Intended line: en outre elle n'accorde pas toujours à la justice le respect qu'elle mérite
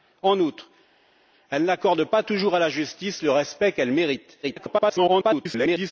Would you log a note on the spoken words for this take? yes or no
yes